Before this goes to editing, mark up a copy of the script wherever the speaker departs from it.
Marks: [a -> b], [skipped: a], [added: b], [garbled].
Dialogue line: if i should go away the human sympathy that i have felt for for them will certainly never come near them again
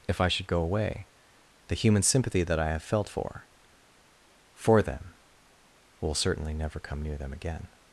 if i should go away the human sympathy that i have felt for for them will certainly never come near them again